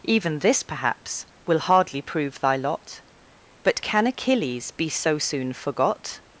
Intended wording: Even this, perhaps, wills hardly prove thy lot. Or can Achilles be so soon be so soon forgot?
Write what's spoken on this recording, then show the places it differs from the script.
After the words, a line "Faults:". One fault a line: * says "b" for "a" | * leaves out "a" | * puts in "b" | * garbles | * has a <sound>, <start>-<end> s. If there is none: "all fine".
Even this, perhaps, will hardly prove thy lot. But can Achilles be so soon forgot?
Faults:
* says "will" for "wills"
* says "But" for "Or"
* leaves out "be so soon"